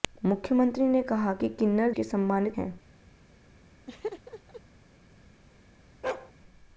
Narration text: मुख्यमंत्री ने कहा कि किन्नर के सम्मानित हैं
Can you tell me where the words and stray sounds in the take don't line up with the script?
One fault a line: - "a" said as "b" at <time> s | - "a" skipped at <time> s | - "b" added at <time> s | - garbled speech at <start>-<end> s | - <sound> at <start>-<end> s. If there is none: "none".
- laugh at 3.9-4.6 s
- bark at 6.0-6.3 s